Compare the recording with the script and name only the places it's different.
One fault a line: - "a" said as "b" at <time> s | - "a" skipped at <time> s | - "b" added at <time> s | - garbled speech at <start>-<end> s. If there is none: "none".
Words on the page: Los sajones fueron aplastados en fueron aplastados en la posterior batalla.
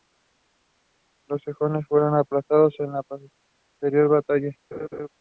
- "fueron aplastados en" skipped at 2.9 s